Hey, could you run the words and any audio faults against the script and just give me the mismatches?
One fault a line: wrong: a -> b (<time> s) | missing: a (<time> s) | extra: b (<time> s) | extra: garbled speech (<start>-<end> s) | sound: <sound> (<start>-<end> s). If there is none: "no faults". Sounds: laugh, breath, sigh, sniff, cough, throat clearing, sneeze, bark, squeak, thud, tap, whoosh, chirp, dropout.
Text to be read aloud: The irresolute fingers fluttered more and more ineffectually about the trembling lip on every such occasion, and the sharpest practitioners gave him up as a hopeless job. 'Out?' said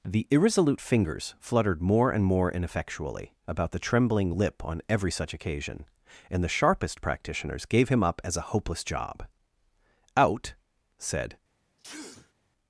sound: sneeze (11.8-12.3 s)